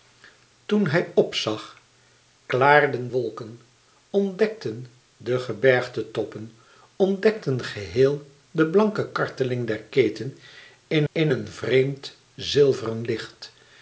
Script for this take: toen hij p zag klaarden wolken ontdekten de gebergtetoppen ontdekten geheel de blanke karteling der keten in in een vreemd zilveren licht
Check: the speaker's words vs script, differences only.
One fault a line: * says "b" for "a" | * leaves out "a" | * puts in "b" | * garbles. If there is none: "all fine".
all fine